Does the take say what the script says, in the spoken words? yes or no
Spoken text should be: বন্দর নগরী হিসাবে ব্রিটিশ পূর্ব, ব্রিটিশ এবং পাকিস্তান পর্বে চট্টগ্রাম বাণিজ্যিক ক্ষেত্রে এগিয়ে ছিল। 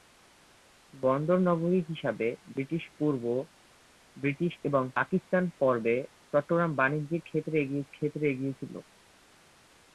no